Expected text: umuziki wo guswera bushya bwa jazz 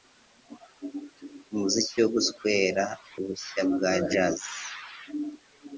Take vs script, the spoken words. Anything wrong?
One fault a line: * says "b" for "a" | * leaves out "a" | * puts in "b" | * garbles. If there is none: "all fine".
all fine